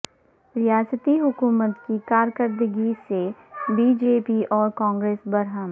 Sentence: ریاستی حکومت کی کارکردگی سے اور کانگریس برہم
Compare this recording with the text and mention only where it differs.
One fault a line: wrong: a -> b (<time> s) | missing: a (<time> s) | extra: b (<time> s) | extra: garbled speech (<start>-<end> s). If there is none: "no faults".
extra: بی جے پی (3.7 s)